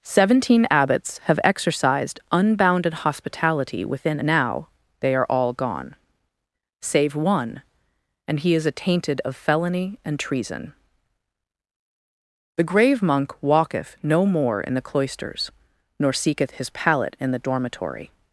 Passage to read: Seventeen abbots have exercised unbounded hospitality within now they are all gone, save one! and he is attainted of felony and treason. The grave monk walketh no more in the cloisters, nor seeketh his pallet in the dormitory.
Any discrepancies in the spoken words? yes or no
no